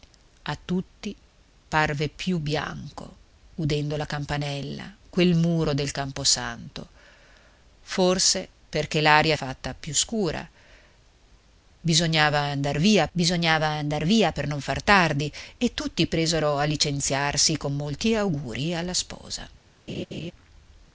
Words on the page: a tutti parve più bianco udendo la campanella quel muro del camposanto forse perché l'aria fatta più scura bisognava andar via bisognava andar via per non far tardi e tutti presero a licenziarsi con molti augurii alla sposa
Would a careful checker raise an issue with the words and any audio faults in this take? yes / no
yes